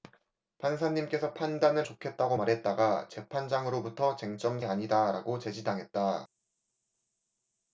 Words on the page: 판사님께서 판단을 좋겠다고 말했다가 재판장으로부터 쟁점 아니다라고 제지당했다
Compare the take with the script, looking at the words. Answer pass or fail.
pass